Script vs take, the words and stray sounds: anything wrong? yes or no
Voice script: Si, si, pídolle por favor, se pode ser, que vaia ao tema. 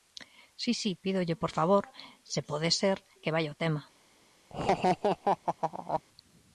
yes